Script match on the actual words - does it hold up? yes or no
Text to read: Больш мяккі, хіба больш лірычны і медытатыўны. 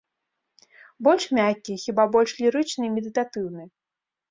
yes